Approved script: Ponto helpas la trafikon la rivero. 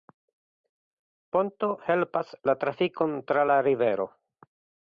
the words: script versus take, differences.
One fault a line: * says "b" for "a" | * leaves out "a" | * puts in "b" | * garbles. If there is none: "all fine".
* puts in "tra"